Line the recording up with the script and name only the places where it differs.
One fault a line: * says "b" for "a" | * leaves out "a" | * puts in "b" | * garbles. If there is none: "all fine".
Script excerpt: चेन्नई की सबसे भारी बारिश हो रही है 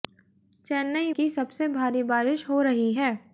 all fine